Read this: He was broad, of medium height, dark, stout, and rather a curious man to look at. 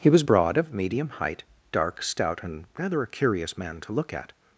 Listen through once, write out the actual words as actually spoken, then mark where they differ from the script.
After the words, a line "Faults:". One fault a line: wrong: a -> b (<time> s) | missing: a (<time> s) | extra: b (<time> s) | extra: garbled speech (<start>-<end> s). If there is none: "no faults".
He was broad, of medium height, dark, stout, and rather a curious man to look at.
Faults:
no faults